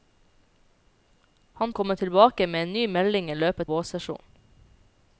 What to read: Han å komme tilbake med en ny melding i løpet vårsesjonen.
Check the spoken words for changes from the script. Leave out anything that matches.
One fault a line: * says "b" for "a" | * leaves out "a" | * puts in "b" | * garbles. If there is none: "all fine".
all fine